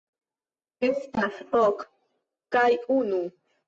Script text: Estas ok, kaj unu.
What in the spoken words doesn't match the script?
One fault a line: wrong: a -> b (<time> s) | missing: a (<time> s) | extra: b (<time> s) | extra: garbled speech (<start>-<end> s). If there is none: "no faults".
no faults